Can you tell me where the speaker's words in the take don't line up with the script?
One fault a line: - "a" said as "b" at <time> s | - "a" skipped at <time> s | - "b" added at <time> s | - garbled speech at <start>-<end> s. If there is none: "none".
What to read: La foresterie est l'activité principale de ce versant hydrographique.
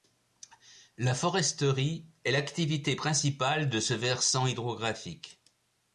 none